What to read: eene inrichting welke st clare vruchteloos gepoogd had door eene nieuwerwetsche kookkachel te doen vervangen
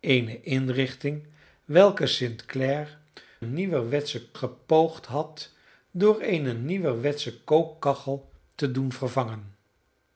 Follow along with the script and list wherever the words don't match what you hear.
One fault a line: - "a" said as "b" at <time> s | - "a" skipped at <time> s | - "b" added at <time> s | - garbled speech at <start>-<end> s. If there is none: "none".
- "vruchteloos" said as "nieuwerwetsche" at 3.4 s